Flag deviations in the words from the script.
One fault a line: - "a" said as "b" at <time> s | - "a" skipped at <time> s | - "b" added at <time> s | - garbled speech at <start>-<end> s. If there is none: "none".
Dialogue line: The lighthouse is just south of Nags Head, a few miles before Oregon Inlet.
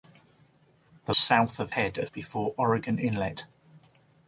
- "lighthouse is just" skipped at 1.1 s
- "Nags" skipped at 1.7 s
- "few miles" skipped at 2.1 s